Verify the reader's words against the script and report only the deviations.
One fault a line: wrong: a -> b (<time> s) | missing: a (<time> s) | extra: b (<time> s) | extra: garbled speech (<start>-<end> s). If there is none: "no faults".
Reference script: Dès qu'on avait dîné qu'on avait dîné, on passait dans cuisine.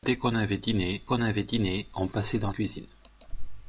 no faults